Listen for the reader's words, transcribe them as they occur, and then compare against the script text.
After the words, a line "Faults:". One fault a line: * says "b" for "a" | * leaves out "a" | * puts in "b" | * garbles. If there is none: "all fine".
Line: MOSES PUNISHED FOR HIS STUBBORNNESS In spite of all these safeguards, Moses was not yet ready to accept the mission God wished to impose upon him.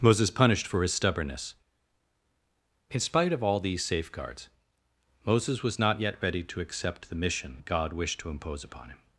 MOSES PUNISHED FOR HIS STUBBORNNESS In spite of all these safeguards, Moses was not yet ready to accept the mission God wished to impose upon him.
Faults:
all fine